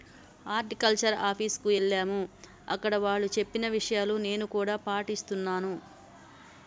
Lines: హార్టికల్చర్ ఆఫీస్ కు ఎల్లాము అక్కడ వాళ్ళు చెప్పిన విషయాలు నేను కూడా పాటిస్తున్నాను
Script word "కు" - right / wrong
right